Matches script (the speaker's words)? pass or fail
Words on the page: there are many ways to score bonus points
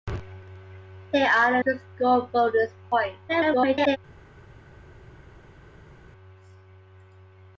fail